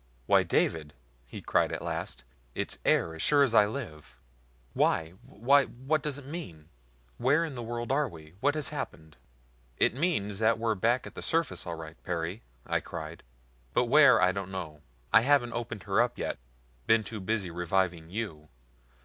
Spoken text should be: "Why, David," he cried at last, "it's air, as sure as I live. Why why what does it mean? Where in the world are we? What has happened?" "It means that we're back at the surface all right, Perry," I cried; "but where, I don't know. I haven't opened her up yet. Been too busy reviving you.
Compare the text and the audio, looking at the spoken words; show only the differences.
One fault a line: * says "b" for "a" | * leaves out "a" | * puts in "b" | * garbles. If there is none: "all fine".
all fine